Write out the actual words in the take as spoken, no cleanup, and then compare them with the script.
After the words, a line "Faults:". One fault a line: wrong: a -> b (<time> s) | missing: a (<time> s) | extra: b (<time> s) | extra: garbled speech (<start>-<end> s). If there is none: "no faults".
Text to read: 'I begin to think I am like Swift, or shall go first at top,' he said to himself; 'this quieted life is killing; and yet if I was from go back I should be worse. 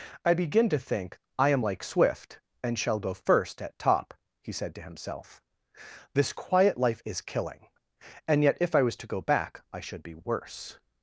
'I begin to think I am like Swift, and shall go first at top,' he said to himself; 'this quiet life is killing; and yet if I was to go back I should be worse.
Faults:
wrong: or -> and (2.6 s)
wrong: quieted -> quiet (6.3 s)
wrong: from -> to (8.9 s)